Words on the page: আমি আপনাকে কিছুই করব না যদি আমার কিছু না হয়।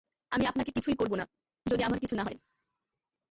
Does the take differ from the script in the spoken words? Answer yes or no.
no